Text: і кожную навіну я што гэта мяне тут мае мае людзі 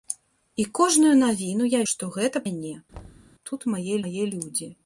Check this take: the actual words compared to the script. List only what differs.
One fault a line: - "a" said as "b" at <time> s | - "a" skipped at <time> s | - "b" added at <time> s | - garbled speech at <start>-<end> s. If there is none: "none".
none